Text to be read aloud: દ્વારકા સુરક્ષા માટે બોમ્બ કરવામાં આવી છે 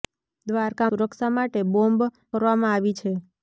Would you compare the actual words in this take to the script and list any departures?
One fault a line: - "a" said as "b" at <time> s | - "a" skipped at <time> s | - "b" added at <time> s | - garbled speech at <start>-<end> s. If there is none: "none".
none